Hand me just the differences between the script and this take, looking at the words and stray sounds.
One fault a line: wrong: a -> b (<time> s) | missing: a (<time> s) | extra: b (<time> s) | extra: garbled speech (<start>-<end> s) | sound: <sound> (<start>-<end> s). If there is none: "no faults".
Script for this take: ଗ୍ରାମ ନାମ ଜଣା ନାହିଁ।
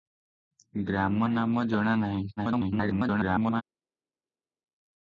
extra: garbled speech (2.4-3.6 s)